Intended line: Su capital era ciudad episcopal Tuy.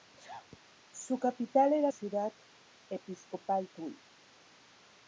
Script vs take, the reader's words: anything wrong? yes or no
no